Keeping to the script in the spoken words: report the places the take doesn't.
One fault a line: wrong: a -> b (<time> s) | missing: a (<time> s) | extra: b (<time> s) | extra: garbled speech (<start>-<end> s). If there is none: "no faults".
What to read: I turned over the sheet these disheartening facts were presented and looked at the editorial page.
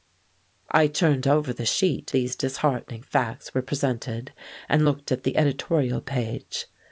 no faults